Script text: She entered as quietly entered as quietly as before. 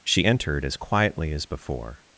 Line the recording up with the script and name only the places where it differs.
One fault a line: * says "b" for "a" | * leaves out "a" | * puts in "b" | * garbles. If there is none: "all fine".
* leaves out "entered as quietly"